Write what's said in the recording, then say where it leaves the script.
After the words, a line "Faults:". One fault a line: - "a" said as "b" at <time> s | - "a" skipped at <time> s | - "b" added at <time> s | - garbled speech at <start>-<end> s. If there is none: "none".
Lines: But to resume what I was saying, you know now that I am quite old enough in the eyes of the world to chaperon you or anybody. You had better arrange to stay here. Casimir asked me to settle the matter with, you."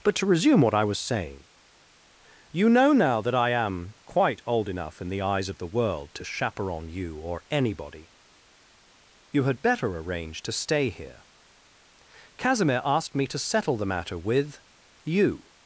But to resume what I was saying, you know now that I am quite old enough in the eyes of the world to chaperon you or anybody. You had better arrange to stay here. Casimir asked me to settle the matter with, you."
Faults:
none